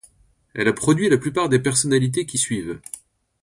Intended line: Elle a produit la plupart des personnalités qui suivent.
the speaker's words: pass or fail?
pass